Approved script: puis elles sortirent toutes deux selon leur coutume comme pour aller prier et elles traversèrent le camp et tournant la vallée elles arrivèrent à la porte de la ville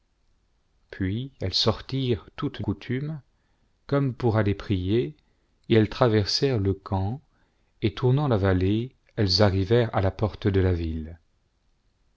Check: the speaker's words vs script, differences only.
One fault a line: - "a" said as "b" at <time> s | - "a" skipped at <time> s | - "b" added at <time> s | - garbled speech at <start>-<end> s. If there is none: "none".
- "deux selon leur" skipped at 2.6 s